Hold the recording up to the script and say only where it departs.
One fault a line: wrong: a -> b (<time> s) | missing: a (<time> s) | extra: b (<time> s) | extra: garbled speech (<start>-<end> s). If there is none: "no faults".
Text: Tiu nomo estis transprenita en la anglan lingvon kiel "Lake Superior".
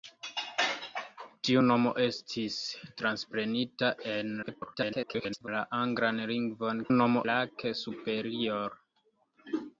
extra: garbled speech (4.4-5.5 s)
wrong: kiel -> nomo (6.9 s)